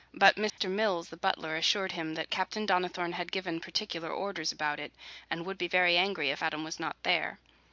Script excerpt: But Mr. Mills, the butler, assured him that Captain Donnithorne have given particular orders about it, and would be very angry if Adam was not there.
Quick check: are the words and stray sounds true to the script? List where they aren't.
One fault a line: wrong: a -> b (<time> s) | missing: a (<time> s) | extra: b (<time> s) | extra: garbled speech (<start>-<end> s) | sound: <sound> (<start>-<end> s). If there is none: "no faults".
sound: dropout (0.5-0.6 s)
wrong: have -> had (3.1 s)